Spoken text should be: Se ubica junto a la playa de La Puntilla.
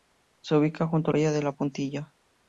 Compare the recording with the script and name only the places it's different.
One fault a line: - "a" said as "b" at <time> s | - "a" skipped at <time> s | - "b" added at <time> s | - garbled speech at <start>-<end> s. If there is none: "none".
- "la" skipped at 1.1 s